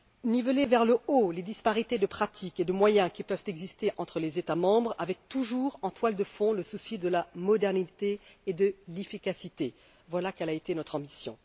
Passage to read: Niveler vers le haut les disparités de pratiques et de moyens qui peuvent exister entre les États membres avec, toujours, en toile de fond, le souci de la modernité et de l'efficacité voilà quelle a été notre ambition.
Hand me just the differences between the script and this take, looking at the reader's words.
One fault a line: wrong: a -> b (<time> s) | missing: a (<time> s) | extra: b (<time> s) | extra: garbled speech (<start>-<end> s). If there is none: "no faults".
no faults